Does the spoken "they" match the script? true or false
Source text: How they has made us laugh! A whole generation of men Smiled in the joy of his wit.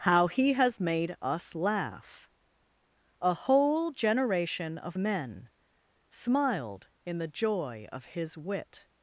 false